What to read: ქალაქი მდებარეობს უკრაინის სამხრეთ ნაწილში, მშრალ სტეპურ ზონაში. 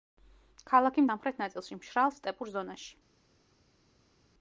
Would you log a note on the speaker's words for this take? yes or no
yes